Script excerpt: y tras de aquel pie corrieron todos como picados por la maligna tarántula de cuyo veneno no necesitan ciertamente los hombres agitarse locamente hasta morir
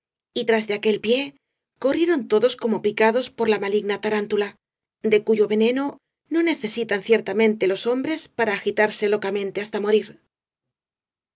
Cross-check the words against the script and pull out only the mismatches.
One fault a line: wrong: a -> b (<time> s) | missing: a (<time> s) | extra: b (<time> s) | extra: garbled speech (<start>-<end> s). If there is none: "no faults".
extra: para (8.3 s)